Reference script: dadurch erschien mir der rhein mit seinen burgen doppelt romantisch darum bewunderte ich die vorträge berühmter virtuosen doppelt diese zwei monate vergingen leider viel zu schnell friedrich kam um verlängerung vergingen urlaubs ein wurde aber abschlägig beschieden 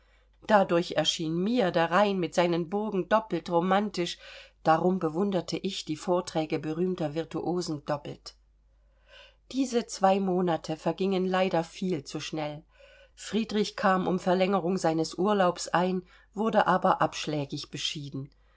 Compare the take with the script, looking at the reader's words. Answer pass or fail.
fail